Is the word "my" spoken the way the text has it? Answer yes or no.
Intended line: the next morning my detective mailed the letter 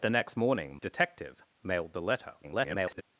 no